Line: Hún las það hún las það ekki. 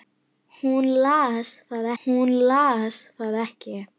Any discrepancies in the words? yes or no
no